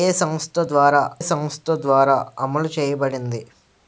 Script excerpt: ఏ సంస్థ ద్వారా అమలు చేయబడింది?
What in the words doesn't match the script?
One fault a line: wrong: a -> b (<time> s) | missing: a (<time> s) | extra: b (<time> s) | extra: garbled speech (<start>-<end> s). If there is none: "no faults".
extra: సంస్థ ద్వారా (1.2 s)